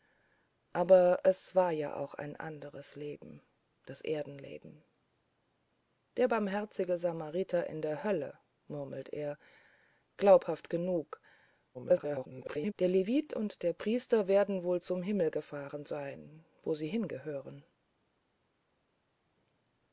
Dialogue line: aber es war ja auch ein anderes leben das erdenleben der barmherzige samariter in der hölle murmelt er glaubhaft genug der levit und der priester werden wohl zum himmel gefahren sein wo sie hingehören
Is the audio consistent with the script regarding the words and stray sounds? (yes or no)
no